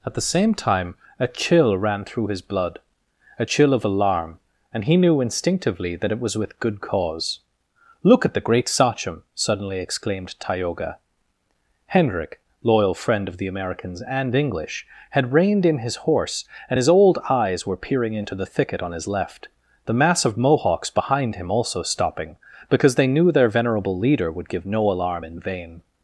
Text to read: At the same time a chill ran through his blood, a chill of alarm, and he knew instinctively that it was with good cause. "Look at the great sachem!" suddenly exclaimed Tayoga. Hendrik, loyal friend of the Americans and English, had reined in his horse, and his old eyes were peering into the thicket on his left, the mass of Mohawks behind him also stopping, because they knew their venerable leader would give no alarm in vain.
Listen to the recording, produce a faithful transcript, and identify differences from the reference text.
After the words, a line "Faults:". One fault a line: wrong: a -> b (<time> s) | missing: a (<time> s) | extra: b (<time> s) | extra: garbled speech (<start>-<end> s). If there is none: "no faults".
At the same time a chill ran through his blood, a chill of alarm, and he knew instinctively that it was with good cause. "Look at the great sachem!" suddenly exclaimed Tayoga. Hendrik, loyal friend of the Americans and English, had reined in his horse, and his old eyes were peering into the thicket on his left, the mass of Mohawks behind him also stopping, because they knew their venerable leader would give no alarm in vain.
Faults:
no faults